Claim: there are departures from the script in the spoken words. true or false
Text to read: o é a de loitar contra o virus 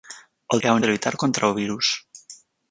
false